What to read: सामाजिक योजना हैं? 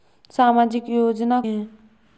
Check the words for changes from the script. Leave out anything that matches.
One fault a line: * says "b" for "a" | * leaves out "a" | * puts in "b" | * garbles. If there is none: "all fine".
all fine